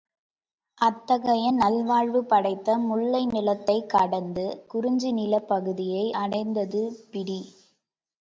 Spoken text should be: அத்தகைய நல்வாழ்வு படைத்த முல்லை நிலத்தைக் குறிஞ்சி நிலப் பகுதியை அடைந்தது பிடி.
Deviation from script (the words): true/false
true